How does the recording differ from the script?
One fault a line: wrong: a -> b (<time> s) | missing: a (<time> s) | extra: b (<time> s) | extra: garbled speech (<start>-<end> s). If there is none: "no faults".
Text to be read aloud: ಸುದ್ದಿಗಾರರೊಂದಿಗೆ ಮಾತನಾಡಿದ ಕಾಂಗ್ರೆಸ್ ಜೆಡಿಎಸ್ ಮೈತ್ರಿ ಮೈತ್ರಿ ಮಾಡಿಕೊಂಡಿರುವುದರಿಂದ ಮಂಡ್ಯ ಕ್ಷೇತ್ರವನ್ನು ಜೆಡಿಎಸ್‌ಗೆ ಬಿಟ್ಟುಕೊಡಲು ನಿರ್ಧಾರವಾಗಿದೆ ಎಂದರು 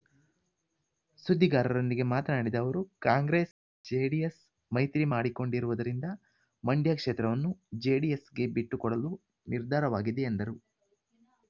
extra: ಅವರು (2.6 s)
missing: ಮೈತ್ರಿ (5.0 s)